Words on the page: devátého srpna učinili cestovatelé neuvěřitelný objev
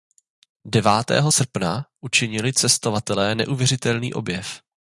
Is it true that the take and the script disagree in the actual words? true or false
false